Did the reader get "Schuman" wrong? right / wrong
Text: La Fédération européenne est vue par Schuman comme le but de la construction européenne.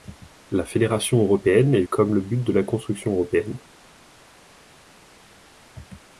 wrong